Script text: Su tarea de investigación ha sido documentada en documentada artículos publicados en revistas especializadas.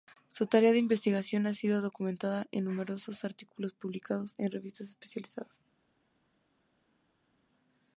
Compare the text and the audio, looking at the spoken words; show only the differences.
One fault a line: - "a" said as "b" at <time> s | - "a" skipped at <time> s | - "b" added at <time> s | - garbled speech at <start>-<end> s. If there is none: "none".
- "documentada" said as "numerosos" at 2.6 s